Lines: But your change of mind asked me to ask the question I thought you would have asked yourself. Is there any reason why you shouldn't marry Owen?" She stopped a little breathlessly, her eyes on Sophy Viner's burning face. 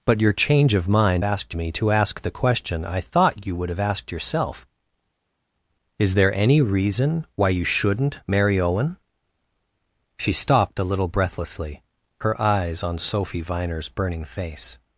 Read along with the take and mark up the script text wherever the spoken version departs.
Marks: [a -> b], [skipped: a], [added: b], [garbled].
But your change of mind asked me to ask the question I thought you would have asked yourself. Is there any reason why you shouldn't marry Owen?" She stopped a little breathlessly, her eyes on Sophy Viner's burning face.